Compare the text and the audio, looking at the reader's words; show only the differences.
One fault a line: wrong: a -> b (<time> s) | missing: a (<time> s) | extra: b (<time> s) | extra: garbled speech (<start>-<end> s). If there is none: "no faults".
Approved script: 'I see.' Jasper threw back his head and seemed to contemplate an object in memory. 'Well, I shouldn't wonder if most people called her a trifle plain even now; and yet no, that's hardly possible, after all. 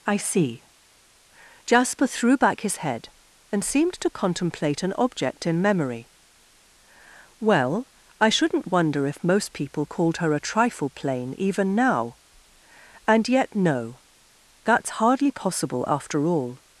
no faults